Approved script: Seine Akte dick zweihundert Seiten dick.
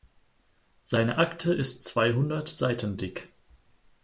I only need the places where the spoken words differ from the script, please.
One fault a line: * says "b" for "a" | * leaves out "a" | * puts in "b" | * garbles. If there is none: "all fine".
* says "ist" for "dick"